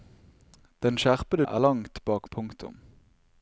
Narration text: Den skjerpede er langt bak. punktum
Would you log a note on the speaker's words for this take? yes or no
no